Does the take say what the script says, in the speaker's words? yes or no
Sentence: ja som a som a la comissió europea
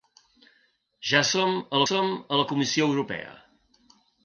yes